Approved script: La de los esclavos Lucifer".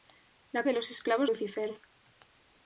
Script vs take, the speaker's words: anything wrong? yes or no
no